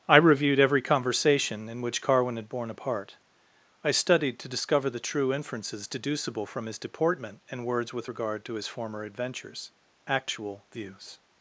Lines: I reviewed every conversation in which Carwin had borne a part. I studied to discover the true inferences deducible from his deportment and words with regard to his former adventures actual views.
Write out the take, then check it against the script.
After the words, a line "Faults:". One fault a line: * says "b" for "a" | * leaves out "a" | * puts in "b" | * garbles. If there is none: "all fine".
I reviewed every conversation in which Carwin had borne a part. I studied to discover the true inferences deducible from his deportment and words with regard to his former adventures actual views.
Faults:
all fine